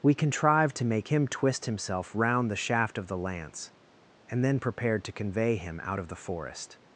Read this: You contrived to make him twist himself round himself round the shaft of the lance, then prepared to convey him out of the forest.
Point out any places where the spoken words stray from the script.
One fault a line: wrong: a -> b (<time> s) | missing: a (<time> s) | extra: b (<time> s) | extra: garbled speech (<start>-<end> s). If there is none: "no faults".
wrong: You -> We (0.0 s)
missing: himself round (2.5 s)
extra: and (4.3 s)